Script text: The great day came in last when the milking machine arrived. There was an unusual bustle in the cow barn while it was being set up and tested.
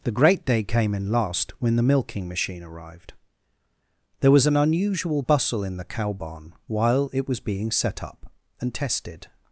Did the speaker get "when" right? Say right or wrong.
right